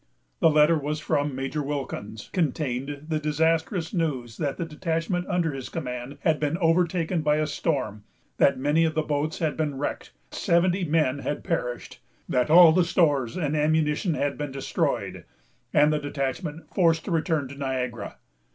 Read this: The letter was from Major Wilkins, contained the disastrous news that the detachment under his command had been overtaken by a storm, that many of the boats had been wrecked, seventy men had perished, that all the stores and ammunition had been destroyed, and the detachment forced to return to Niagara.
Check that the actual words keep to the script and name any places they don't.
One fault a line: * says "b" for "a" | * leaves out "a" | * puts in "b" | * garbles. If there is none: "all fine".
all fine